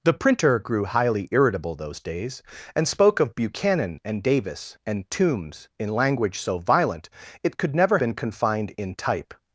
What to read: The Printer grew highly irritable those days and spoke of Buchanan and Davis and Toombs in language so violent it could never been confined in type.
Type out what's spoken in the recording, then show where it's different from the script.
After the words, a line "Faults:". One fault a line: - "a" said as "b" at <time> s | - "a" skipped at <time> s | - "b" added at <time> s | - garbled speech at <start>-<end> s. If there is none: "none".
The Printer grew highly irritable those days and spoke of Buchanan and Davis and Toombs in language so violent it could never been confined in type.
Faults:
none